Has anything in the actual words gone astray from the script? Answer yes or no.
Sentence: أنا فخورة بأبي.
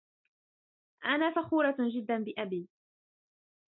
yes